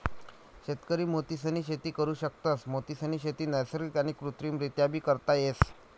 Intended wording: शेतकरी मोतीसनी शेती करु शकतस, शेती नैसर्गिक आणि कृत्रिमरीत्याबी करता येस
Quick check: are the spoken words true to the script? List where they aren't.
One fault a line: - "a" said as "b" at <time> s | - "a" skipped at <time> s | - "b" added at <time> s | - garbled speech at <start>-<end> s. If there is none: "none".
- "मोतीसनी" added at 2.7 s